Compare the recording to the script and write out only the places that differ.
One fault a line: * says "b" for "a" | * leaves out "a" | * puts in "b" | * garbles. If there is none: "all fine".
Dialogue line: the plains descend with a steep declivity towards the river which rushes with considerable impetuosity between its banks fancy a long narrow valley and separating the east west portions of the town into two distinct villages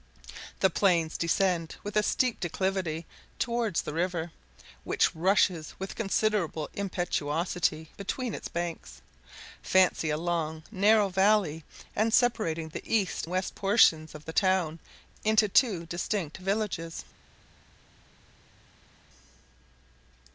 all fine